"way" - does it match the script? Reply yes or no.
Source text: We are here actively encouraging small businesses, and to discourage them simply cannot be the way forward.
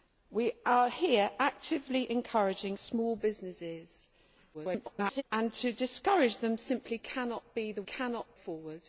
no